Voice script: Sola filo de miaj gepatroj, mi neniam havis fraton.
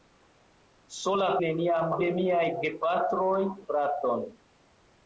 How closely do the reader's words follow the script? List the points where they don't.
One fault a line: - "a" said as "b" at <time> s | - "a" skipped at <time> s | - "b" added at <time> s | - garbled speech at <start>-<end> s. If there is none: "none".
- "filo" said as "neniam" at 1.5 s
- "mi neniam havis" skipped at 3.4 s